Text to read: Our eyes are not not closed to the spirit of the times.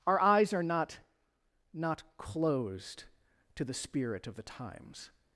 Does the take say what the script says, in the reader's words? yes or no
yes